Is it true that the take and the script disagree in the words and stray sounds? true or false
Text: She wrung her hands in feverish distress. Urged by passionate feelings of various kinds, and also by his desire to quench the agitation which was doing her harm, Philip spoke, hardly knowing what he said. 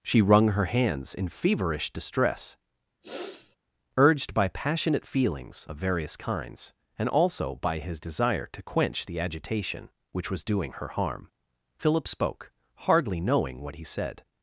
true